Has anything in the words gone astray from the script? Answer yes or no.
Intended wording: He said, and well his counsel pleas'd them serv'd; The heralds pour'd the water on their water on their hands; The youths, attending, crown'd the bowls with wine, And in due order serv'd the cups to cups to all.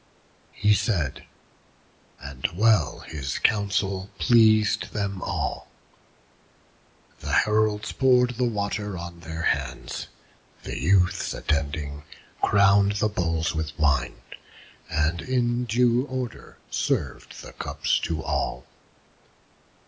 yes